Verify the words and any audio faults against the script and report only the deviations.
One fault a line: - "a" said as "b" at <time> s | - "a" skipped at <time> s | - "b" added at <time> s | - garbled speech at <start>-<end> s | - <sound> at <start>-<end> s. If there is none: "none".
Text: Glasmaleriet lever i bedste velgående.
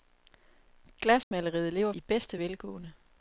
- dropout at 1.2-1.3 s